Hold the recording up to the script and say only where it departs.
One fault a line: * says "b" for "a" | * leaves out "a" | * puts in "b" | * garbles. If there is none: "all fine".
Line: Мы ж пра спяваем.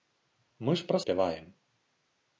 all fine